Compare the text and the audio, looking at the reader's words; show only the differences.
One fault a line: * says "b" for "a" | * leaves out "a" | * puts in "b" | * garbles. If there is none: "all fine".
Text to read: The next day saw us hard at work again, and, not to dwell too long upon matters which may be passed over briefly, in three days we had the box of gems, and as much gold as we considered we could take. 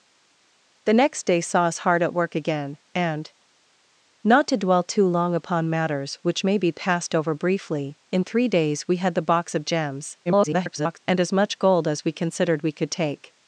* garbles